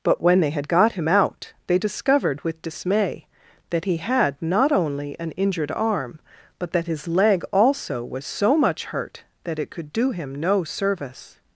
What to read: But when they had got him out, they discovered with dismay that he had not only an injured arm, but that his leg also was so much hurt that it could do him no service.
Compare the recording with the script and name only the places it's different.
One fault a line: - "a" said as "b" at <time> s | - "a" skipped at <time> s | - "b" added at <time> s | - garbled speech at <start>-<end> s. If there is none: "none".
none